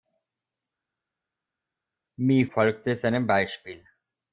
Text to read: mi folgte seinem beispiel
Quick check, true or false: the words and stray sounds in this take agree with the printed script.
true